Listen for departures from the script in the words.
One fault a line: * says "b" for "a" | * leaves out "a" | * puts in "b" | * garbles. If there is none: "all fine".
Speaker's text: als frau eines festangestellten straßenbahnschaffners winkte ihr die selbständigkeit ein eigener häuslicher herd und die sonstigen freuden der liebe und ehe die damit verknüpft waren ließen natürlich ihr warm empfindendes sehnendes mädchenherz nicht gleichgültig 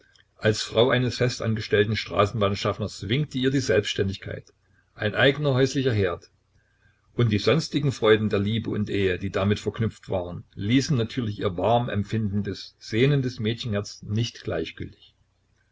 all fine